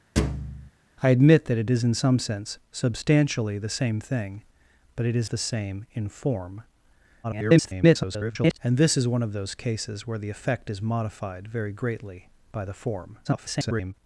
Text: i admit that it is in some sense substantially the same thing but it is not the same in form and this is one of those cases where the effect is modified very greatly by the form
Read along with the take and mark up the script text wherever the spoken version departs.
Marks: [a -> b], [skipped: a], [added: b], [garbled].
i admit that it is in some sense substantially the same thing but it is [skipped: not] the same in form [garbled] and this is one of those cases where the effect is modified very greatly by the form [garbled]